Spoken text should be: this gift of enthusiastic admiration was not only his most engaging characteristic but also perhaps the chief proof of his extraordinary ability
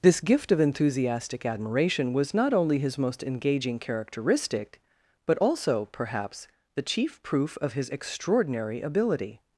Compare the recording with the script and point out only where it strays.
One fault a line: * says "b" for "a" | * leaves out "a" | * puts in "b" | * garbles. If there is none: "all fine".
all fine